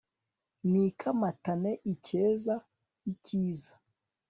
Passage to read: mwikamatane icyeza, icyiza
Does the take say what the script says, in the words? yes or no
yes